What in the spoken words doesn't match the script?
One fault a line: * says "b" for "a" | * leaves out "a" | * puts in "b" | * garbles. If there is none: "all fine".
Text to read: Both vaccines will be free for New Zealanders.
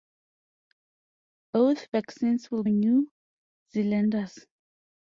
* leaves out "be free for"